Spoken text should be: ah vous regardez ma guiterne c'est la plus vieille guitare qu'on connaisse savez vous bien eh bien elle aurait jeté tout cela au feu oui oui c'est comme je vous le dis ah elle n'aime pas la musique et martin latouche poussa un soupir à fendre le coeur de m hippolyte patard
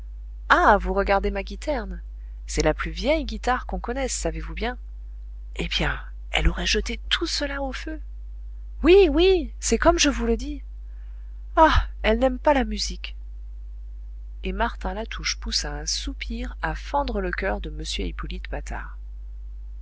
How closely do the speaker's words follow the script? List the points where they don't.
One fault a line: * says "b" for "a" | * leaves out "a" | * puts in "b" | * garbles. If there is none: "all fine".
all fine